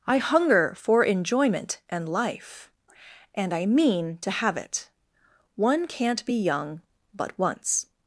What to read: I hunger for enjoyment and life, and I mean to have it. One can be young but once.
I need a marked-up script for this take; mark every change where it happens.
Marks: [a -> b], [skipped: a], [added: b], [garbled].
I hunger for enjoyment and life, and I mean to have it. One [can -> can't] be young but once.